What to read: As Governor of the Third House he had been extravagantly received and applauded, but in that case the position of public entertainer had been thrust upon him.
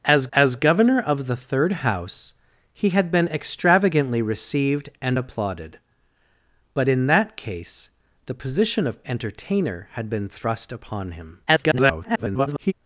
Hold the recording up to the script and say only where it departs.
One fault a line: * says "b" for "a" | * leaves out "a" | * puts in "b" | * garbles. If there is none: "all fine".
* puts in "as"
* leaves out "public"
* garbles